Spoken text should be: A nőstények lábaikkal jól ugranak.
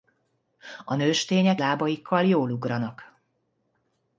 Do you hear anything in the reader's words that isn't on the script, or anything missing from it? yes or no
no